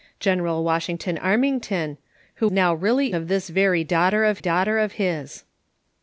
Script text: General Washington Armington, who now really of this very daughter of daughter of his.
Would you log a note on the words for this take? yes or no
no